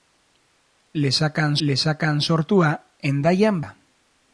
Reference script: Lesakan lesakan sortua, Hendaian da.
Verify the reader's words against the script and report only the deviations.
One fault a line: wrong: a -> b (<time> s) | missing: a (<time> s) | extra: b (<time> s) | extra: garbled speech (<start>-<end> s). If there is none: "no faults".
no faults